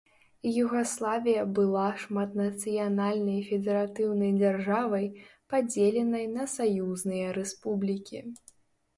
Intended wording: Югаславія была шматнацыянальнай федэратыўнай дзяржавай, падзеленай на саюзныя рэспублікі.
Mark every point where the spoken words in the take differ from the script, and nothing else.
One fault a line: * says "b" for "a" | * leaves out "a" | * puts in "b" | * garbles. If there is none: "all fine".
all fine